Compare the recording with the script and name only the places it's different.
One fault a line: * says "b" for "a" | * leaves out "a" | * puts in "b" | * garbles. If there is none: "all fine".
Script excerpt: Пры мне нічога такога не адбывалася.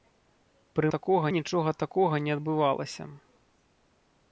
* says "такога" for "мне"